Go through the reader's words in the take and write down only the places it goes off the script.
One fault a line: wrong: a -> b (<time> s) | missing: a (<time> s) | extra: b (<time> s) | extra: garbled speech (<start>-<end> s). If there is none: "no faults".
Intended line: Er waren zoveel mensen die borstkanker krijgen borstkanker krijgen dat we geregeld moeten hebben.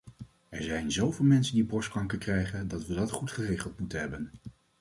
wrong: waren -> zijn (0.6 s)
wrong: borstkanker krijgen -> dat we (2.7 s)
wrong: we -> goed (3.1 s)